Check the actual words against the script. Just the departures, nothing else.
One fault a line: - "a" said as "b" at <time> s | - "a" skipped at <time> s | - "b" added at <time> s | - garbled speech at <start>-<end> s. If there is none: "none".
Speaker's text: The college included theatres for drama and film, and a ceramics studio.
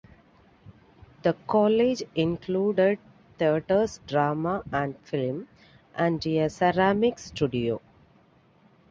- "for" skipped at 4.0 s